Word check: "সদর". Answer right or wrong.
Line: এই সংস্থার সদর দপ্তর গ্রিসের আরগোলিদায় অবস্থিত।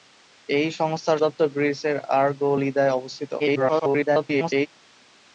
wrong